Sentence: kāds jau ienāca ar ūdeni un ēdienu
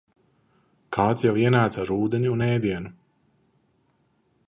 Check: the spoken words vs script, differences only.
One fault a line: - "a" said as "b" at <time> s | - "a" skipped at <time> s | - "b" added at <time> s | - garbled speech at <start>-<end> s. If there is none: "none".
none